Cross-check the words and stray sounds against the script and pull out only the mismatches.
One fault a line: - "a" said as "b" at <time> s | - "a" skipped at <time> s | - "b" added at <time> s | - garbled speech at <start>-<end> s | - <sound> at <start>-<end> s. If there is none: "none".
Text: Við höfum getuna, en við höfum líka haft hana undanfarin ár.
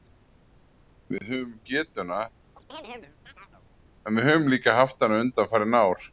- dropout at 1.2-1.2 s
- chirp at 2.6-3.7 s